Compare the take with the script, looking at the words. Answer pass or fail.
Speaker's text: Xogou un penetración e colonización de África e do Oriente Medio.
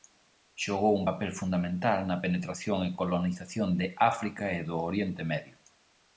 fail